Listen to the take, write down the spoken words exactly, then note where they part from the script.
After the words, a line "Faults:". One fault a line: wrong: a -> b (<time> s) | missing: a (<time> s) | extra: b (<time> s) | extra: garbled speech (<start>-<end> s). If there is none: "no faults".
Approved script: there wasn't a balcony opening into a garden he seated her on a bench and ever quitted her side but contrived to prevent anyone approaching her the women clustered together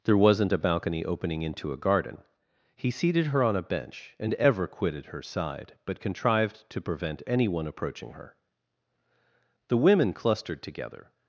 there wasn't a balcony opening into a garden he seated her on a bench and ever quitted her side but contrived to prevent anyone approaching her the women clustered together
Faults:
no faults